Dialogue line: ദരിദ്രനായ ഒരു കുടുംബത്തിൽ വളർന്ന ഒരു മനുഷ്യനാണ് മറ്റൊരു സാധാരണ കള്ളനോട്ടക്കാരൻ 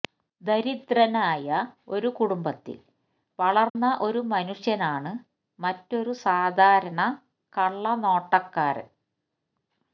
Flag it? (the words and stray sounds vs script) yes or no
yes